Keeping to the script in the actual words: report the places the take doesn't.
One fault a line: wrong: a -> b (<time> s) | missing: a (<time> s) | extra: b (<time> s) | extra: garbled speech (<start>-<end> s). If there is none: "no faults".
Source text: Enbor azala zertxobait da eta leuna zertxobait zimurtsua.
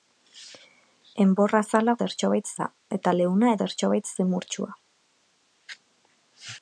no faults